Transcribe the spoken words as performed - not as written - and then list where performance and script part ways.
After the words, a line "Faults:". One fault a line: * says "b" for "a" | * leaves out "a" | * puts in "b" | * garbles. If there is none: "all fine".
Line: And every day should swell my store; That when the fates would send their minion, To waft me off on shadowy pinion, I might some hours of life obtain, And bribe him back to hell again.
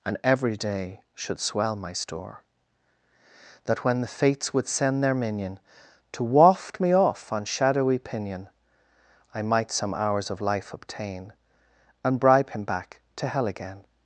And every day should swell my store; That when the fates would send their minion, To waft me off on shadowy pinion, I might some hours of life obtain, And bribe him back to hell again.
Faults:
all fine